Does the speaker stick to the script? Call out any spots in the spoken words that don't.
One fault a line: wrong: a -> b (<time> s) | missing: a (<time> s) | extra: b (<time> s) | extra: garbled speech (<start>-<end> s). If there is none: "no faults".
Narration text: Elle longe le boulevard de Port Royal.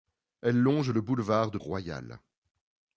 missing: Port (1.6 s)